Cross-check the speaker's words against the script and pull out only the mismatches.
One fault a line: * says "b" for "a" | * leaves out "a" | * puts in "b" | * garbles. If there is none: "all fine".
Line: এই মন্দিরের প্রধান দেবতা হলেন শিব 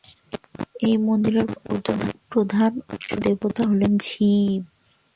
all fine